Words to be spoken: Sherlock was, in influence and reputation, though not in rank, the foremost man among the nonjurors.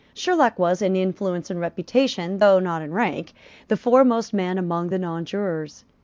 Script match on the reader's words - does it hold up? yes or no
yes